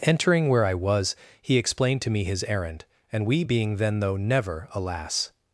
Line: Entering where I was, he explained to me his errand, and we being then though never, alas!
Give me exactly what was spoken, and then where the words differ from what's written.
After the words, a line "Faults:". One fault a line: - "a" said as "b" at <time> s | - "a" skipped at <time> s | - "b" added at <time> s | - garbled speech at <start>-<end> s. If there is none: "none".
Entering where I was, he explained to me his errand, and we being then though never, alas!
Faults:
none